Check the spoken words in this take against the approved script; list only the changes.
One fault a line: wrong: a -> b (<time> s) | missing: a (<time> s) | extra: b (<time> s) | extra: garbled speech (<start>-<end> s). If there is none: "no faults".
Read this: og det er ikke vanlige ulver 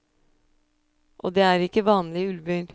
no faults